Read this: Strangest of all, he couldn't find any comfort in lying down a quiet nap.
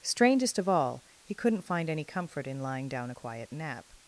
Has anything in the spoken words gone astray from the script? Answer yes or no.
no